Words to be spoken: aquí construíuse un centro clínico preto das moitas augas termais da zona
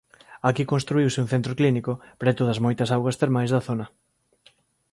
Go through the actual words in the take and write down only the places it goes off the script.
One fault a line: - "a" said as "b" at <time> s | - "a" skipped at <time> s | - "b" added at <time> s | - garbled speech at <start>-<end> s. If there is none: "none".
none